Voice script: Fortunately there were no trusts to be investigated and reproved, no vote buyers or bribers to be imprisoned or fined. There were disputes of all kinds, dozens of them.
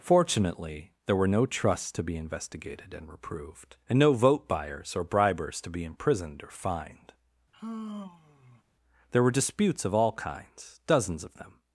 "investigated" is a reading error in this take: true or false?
false